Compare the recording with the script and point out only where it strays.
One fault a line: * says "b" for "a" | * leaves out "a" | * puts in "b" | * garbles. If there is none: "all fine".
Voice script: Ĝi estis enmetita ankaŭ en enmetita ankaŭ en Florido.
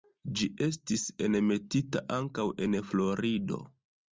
* leaves out "enmetita ankaŭ en"